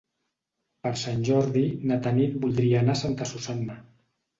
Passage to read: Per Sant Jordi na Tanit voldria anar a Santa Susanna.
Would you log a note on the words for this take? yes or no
no